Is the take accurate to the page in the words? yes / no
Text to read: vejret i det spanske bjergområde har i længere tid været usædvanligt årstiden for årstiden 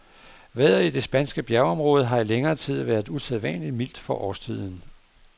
no